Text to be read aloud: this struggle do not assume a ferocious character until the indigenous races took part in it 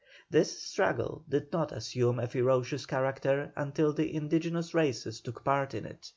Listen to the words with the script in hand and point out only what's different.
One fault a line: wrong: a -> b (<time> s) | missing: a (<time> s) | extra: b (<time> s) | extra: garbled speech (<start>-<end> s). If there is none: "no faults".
wrong: do -> did (1.3 s)